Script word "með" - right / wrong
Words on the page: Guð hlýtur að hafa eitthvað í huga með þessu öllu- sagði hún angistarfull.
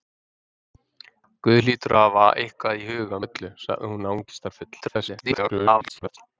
wrong